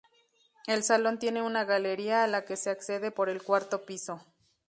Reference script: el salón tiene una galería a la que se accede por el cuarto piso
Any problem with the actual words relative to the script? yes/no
no